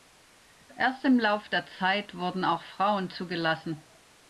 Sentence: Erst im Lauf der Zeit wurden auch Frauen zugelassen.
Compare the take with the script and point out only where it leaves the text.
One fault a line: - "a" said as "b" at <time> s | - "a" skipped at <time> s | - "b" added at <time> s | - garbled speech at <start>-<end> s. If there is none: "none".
none